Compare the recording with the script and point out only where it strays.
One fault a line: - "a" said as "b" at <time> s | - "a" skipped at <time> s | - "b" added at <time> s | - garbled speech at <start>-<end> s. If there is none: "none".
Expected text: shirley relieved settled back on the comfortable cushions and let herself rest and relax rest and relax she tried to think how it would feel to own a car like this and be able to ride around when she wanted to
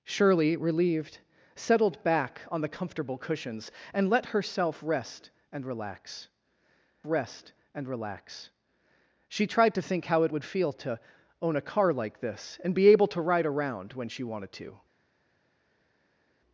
none